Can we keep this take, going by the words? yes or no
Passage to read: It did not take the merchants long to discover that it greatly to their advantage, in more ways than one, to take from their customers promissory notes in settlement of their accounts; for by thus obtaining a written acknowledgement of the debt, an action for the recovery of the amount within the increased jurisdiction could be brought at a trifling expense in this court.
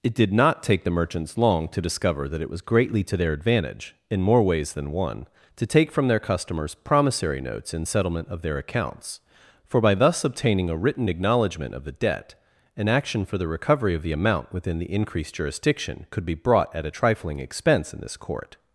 no